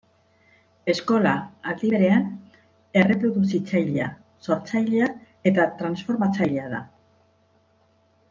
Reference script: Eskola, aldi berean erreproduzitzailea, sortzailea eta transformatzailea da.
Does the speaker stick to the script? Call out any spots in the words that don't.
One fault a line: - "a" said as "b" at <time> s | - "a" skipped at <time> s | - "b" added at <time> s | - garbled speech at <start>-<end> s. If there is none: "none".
none